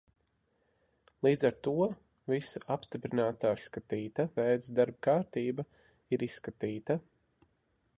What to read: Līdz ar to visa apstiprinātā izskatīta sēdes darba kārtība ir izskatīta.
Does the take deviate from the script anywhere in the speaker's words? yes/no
no